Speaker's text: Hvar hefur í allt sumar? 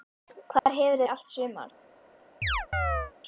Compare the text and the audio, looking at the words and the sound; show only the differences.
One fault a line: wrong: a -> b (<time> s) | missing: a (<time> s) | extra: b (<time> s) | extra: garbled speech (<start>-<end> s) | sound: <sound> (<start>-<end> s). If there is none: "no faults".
sound: dropout (0.6-0.7 s)
sound: chirp (2.4-3.1 s)